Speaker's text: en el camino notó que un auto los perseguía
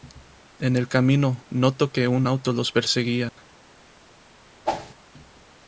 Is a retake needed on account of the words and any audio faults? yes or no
yes